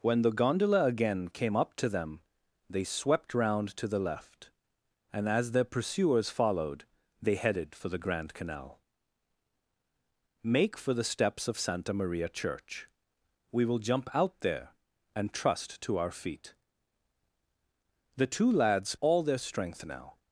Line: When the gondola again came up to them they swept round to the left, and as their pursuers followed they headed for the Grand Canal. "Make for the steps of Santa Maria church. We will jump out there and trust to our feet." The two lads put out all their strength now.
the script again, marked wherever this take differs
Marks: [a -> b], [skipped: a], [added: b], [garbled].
When the gondola again came up to them they swept round to the left, and as their pursuers followed they headed for the Grand Canal. "Make for the steps of Santa Maria church. We will jump out there and trust to our feet." The two lads [skipped: put out] all their strength now.